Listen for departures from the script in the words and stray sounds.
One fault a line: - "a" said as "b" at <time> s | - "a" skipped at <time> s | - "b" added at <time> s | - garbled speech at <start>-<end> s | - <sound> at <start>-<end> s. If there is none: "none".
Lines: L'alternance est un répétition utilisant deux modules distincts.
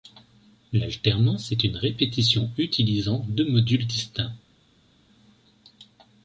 - "un" said as "une" at 1.6 s